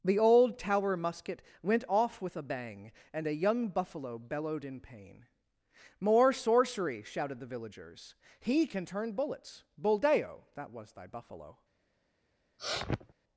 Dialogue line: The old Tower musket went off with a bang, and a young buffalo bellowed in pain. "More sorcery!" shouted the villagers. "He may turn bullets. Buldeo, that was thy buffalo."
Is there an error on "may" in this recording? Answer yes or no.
yes